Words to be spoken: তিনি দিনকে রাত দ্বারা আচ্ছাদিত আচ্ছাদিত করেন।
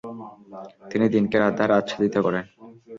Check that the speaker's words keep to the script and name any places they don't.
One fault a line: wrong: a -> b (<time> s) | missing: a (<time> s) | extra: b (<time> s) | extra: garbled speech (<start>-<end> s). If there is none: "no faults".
missing: আচ্ছাদিত (2.1 s)